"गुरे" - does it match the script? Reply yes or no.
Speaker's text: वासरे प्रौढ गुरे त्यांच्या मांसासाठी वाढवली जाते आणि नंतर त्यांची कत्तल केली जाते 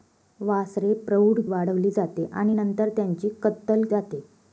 no